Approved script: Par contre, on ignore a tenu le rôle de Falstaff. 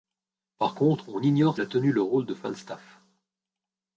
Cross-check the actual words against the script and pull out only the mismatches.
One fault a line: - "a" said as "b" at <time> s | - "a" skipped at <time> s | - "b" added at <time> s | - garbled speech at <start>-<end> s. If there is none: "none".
none